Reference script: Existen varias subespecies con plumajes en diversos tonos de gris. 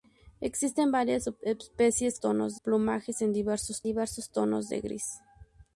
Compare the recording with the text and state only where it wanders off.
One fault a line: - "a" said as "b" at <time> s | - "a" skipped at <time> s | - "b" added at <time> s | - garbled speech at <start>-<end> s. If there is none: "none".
- "con" said as "tonos" at 2.2 s
- "diversos" added at 3.8 s